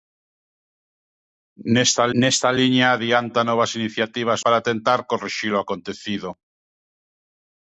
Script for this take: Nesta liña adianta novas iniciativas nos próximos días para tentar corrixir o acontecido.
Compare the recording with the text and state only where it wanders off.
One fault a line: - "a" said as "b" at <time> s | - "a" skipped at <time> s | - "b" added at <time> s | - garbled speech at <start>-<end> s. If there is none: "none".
- "nesta" added at 2.2 s
- "nos próximos días" skipped at 4.4 s